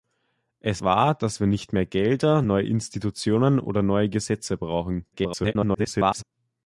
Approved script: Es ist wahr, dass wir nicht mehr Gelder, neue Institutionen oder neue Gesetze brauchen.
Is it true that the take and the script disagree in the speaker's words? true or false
true